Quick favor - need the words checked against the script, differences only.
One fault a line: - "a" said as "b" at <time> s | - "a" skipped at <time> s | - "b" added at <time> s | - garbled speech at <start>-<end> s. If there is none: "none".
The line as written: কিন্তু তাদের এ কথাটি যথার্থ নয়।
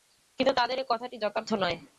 none